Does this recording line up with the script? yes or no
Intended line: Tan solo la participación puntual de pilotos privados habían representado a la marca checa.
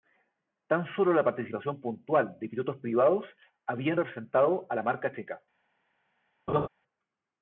yes